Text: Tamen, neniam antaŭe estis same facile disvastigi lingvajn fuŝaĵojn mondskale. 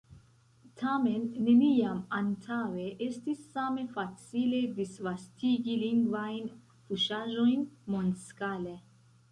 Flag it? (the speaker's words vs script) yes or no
no